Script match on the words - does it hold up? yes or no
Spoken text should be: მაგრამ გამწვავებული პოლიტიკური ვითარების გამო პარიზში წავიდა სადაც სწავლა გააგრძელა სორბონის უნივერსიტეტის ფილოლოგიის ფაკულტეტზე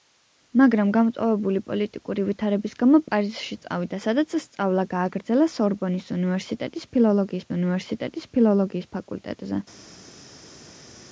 no